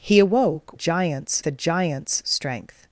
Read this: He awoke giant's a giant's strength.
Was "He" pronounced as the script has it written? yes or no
yes